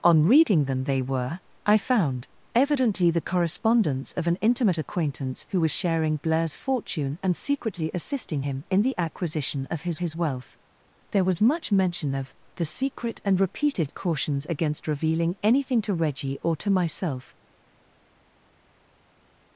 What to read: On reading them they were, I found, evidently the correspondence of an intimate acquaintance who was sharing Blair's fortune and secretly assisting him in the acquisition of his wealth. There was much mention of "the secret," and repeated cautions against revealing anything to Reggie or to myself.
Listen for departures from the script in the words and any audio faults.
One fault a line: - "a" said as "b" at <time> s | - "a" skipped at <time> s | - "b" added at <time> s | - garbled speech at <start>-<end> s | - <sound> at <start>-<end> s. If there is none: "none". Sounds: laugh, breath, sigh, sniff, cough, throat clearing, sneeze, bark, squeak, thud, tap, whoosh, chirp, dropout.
- "his" added at 10.0 s